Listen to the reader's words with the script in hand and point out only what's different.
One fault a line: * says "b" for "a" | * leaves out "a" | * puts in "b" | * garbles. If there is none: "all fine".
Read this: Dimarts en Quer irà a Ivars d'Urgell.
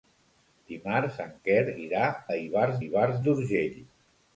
* puts in "Ivars"